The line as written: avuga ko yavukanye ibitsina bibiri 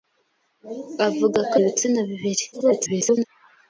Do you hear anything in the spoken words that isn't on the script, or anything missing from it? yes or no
yes